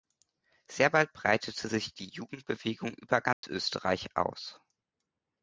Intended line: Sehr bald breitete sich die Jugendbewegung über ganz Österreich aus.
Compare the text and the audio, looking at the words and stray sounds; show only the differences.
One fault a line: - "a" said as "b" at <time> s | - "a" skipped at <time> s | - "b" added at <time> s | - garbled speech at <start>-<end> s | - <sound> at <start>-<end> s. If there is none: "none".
- dropout at 3.3-3.4 s